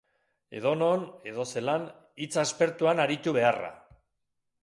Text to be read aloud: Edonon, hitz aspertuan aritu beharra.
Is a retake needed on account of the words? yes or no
yes